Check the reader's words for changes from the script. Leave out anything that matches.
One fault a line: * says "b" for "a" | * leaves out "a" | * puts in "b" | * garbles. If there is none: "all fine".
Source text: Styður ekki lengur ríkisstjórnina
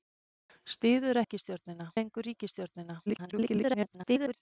* says "ríkisstjórnina" for "ekki"
* garbles